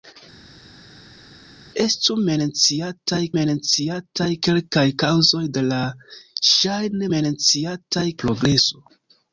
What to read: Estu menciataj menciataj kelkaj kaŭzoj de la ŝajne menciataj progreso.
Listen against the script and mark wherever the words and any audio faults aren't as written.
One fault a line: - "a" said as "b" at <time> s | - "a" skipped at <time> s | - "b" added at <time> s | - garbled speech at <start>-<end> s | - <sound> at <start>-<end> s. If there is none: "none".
none